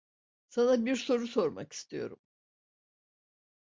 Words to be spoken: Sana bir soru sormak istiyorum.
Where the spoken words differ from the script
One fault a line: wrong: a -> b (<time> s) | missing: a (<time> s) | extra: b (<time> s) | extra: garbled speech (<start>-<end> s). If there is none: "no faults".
no faults